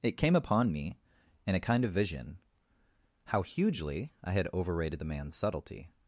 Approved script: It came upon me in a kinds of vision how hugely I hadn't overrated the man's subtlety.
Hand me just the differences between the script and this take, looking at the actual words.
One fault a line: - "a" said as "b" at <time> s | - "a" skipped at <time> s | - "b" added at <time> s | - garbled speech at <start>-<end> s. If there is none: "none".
- "kinds" said as "kind" at 1.6 s
- "hadn't" said as "had" at 4.3 s